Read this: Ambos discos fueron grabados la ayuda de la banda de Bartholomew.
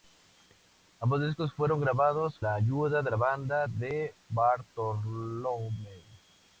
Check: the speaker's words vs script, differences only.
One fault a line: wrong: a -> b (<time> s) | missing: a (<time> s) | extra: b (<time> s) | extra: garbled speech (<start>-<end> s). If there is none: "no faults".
no faults